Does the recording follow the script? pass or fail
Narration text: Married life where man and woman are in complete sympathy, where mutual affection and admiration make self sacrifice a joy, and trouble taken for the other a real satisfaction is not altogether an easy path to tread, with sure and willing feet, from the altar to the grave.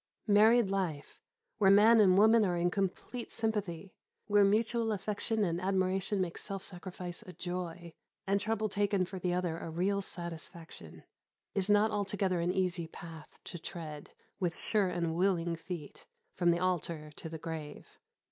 pass